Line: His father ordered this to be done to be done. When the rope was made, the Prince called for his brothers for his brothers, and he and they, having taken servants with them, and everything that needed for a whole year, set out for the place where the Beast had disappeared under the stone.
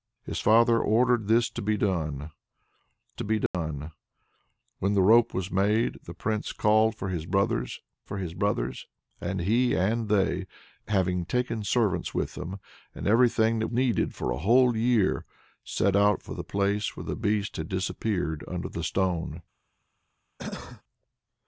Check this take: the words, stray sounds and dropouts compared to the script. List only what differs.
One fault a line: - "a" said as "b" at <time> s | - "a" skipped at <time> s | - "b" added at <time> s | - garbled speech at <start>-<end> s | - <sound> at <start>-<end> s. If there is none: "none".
- dropout at 3.5-3.5 s
- cough at 20.4-20.8 s